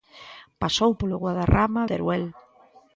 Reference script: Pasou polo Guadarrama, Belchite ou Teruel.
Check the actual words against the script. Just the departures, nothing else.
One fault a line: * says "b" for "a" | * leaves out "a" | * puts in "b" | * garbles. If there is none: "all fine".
* leaves out "Belchite ou"